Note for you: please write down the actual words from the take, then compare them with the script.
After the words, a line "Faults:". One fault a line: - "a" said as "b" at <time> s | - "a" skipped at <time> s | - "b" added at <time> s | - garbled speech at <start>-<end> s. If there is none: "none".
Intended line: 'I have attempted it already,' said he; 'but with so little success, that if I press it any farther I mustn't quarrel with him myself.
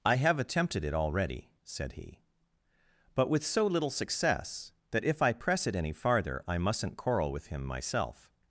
'I have attempted it already,' said he; 'but with so little success, that if I press it any farther I mustn't quarrel with him myself.
Faults:
none